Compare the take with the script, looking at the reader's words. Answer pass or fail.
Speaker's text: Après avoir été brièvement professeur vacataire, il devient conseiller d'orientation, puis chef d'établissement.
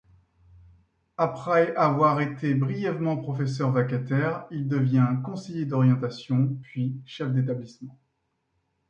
pass